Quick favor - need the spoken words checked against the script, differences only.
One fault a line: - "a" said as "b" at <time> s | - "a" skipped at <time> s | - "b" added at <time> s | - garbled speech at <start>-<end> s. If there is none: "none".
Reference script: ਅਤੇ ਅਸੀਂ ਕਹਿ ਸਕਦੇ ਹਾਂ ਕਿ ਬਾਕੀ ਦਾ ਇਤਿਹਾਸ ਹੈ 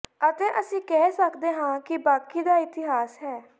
none